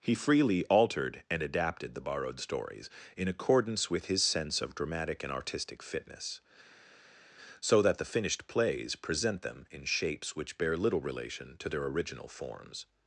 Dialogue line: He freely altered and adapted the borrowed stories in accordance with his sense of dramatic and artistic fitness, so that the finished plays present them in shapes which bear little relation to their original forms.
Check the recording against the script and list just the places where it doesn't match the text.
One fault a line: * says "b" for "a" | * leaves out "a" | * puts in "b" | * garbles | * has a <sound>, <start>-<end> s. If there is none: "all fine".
all fine